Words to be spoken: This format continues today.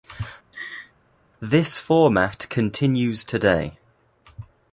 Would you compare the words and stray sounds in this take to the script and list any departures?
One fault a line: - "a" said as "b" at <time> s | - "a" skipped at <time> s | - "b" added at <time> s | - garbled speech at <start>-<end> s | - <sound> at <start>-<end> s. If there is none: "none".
- laugh at 0.5-0.9 s